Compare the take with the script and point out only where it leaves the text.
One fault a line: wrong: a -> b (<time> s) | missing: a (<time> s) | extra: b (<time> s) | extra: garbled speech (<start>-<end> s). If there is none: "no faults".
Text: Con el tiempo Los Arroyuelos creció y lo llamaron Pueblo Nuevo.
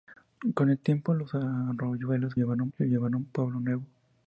wrong: creció -> llamaron (2.4 s)